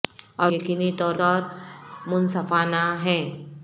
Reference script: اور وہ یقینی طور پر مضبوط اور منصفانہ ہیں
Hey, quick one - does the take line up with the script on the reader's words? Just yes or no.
no